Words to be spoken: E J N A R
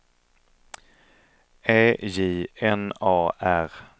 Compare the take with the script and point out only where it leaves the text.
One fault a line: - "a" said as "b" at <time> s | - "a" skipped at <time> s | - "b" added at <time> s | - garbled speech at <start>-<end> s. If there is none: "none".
none